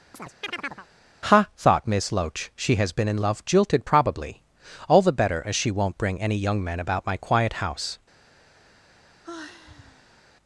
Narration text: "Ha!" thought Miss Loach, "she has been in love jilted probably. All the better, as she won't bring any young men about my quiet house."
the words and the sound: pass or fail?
fail